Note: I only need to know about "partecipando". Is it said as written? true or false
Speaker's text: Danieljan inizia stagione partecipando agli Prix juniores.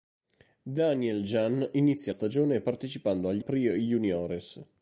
true